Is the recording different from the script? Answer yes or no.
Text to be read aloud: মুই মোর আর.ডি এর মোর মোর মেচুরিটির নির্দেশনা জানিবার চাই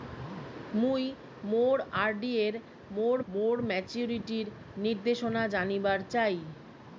no